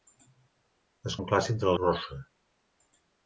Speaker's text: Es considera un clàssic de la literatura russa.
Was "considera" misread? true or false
true